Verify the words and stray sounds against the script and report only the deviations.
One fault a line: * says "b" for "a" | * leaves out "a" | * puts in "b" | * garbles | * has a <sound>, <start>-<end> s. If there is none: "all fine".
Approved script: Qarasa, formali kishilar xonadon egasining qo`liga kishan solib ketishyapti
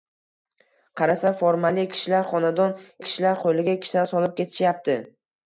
* says "kishilar" for "egasining"